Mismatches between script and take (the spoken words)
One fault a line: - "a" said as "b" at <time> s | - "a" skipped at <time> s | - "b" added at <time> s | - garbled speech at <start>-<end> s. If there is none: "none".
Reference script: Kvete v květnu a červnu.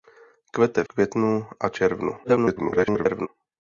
- "v" skipped at 0.8 s
- garbled speech at 2.2-3.3 s